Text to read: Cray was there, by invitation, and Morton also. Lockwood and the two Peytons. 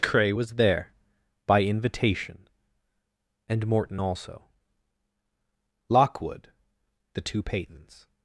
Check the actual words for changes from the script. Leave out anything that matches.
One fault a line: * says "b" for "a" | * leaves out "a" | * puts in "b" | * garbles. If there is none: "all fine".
* leaves out "and"